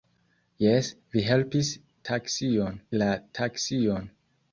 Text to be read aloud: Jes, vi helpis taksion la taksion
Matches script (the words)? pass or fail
pass